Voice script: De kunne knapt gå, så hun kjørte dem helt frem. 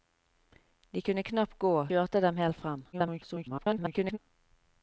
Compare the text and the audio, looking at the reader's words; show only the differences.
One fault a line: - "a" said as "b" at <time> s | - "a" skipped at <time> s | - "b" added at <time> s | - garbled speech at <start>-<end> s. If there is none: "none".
- "så hun" skipped at 1.7 s
- garbled speech at 2.9-4.2 s